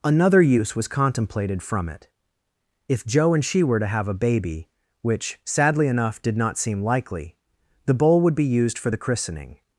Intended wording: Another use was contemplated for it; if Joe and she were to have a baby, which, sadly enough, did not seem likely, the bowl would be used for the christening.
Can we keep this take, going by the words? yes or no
no